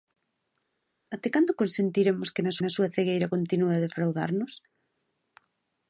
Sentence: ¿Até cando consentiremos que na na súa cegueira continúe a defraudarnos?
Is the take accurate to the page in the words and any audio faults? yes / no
yes